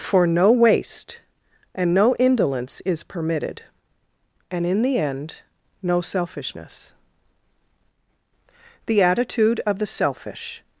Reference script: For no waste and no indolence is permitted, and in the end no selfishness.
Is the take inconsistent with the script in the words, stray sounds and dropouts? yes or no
yes